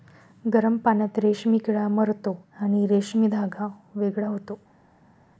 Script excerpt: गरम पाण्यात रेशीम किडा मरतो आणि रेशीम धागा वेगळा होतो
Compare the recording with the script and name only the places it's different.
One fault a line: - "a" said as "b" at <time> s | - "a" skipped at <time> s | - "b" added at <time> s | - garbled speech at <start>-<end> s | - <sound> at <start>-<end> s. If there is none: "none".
none